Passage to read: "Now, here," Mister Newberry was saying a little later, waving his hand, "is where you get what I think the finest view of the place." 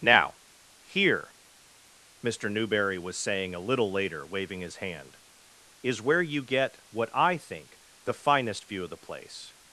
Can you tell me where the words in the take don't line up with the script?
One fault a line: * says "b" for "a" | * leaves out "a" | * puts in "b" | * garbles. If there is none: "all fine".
all fine